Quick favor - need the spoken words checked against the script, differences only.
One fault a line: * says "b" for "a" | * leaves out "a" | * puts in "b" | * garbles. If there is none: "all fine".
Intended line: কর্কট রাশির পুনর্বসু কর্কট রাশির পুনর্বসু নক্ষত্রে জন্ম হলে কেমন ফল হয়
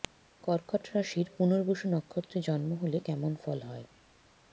* leaves out "কর্কট রাশির পুনর্বসু"